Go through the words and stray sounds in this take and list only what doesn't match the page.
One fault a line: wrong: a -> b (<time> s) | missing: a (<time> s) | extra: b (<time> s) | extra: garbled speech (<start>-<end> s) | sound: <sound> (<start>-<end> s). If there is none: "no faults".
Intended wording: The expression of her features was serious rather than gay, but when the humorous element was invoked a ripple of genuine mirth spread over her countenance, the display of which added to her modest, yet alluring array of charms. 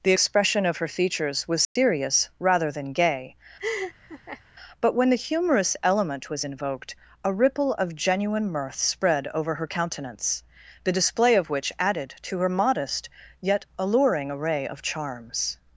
sound: dropout (1.6-1.8 s)
sound: laugh (3.6-4.4 s)